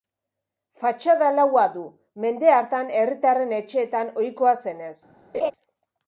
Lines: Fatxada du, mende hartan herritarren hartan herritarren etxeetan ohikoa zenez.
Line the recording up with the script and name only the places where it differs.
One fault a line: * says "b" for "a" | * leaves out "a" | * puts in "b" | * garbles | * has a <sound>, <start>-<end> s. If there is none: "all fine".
* puts in "laua"
* leaves out "hartan herritarren"
* has a laugh, 5.3-5.5 s